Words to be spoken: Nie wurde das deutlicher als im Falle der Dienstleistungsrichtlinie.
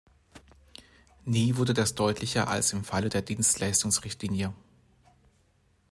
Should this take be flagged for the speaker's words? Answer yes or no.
no